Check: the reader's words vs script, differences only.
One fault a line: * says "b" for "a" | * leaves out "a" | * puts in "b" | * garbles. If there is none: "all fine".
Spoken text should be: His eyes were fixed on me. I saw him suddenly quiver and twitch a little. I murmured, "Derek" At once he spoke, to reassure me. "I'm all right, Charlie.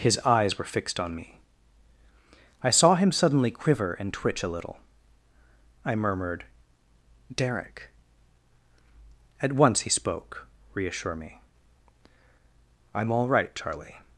* leaves out "to"